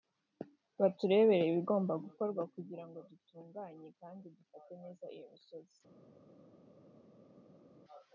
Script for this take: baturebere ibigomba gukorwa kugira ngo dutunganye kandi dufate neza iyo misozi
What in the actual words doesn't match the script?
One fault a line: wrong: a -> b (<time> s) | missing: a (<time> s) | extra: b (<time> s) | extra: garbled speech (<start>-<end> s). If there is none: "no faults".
no faults